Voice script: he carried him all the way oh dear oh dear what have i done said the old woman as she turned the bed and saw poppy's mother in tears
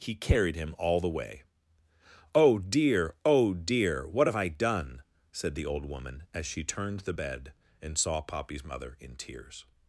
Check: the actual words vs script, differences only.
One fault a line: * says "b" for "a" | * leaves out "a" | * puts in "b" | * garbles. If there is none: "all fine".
all fine